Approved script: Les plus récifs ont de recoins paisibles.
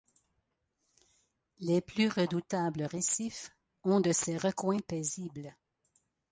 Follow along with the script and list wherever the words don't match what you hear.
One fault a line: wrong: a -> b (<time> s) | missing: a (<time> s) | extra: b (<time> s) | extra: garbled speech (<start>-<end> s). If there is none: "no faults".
extra: redoutables (2.1 s)
extra: ces (4.1 s)